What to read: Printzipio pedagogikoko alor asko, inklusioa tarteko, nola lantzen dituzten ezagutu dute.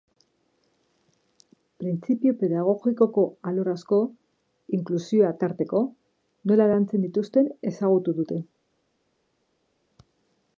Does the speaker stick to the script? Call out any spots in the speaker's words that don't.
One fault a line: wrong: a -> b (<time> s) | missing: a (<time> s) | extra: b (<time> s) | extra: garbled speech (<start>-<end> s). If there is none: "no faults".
no faults